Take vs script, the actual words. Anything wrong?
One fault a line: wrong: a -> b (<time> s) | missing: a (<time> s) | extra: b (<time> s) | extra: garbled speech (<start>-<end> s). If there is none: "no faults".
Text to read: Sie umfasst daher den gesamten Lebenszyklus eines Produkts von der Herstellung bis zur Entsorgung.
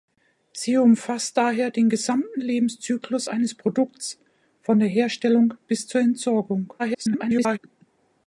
extra: garbled speech (6.8-7.6 s)